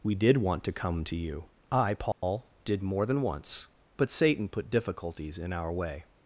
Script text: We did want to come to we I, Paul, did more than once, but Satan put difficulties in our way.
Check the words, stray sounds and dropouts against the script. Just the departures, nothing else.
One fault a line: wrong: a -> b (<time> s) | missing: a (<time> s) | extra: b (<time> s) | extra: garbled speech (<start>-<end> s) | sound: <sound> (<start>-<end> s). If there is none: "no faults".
wrong: we -> you (1.1 s)
sound: dropout (2.1-2.2 s)